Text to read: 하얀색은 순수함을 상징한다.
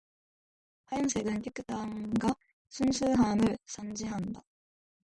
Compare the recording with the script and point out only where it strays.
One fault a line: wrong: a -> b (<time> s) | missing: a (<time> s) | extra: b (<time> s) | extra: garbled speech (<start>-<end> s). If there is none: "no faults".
extra: 깨끗함과 (1.4 s)